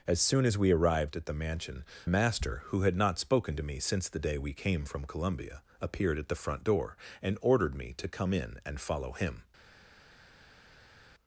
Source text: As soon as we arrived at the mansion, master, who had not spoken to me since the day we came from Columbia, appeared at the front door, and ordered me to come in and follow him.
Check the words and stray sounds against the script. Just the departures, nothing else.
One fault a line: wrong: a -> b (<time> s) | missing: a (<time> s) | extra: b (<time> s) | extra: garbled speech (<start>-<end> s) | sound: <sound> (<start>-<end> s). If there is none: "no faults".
no faults